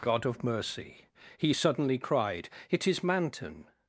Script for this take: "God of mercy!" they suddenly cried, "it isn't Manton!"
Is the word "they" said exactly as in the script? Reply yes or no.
no